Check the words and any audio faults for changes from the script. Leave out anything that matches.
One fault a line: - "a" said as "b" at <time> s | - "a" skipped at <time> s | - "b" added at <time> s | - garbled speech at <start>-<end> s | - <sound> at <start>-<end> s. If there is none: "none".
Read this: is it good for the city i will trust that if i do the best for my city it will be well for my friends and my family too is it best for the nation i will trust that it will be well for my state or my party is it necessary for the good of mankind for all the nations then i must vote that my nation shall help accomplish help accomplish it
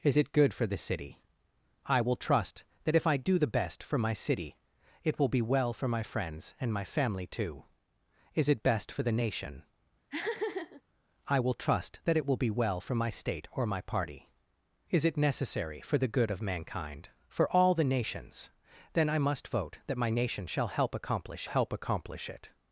- laugh at 10.1-10.8 s